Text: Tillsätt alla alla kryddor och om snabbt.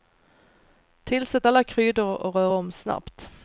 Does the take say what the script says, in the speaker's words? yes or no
no